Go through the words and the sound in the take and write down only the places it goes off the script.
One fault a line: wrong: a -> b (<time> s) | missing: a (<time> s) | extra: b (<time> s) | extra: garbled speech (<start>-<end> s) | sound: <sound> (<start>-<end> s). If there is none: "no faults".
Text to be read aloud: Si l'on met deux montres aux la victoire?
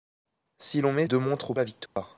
sound: dropout (1.9-2.0 s)